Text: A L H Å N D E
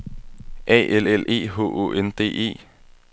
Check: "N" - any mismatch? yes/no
no